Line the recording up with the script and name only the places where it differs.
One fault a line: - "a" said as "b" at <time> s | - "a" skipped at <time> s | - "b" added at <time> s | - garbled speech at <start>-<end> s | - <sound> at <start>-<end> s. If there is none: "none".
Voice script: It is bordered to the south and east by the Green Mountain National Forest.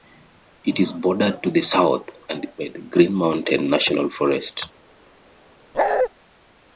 - "east" skipped at 2.5 s
- bark at 5.7-6.1 s